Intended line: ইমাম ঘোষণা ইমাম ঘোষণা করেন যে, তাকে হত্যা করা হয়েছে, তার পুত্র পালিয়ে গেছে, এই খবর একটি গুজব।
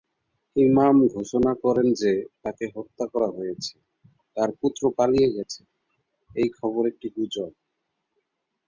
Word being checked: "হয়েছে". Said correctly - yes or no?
yes